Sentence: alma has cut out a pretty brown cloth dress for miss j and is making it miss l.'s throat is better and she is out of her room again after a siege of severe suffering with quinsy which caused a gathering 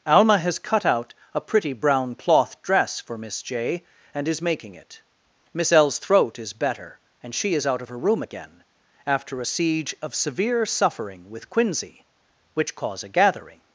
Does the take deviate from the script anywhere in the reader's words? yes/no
yes